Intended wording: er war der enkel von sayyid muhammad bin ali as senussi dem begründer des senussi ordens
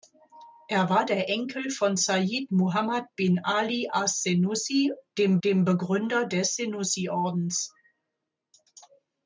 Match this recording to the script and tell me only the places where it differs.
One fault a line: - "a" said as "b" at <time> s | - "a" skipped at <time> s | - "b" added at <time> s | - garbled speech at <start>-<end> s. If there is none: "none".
- "dem" added at 5.4 s